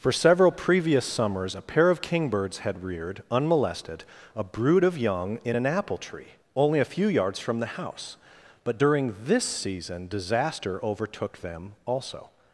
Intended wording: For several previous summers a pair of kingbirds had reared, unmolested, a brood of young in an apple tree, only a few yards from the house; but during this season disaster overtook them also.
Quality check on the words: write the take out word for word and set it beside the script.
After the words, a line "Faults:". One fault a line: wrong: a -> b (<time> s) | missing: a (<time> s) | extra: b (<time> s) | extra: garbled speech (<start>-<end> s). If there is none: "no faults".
For several previous summers a pair of kingbirds had reared, unmolested, a brood of young in an apple tree, only a few yards from the house; but during this season disaster overtook them also.
Faults:
no faults